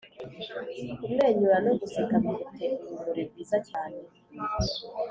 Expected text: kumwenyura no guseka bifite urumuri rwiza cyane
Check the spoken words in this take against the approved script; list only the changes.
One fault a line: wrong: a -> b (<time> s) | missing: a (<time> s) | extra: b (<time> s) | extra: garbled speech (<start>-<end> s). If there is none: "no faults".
no faults